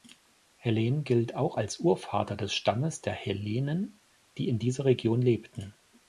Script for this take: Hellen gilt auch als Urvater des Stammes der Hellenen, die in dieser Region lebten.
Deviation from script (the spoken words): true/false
false